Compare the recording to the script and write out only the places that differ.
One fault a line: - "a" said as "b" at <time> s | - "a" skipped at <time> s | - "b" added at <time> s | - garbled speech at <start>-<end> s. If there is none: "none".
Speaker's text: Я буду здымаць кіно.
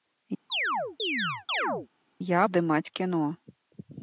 - "буду" skipped at 2.4 s